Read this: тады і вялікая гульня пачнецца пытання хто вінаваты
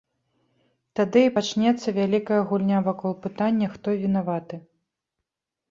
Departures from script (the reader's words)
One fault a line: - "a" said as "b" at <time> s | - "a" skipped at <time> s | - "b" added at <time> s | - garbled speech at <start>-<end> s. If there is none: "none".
- "пачнецца" added at 1.4 s
- "пачнецца" said as "вакол" at 2.9 s